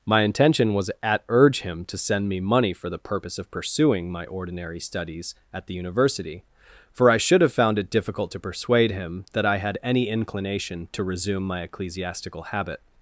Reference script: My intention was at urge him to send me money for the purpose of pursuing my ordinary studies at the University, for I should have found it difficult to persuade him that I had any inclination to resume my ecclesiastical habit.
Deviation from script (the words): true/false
false